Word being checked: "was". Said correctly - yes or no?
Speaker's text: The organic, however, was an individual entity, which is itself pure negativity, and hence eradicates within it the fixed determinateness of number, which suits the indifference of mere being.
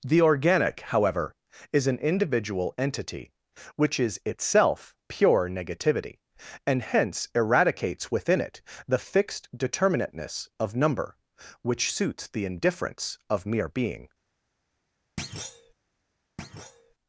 no